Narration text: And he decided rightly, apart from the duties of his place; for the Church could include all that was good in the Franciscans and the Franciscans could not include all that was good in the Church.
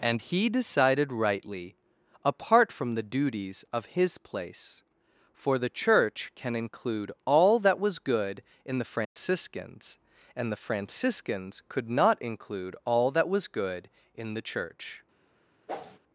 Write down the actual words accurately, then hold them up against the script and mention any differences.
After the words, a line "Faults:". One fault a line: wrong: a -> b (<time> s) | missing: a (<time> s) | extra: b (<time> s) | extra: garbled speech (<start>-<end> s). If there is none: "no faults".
And he decided rightly, apart from the duties of his place; for the Church can include all that was good in the Franciscans and the Franciscans could not include all that was good in the Church.
Faults:
wrong: could -> can (6.3 s)